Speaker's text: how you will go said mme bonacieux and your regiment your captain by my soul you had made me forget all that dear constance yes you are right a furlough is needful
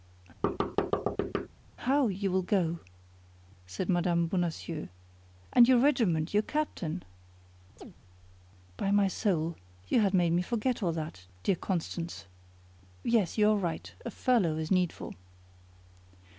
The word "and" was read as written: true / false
true